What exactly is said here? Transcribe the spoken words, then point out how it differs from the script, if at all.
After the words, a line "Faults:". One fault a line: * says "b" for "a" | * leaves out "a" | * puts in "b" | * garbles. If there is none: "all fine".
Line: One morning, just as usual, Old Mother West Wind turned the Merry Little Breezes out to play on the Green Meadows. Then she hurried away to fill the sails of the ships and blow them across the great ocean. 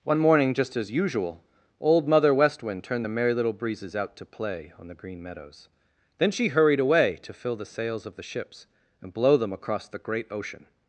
One morning, just as usual, Old Mother West Wind turned the Merry Little Breezes out to play on the Green Meadows. Then she hurried away to fill the sails of the ships and blow them across the great ocean.
Faults:
all fine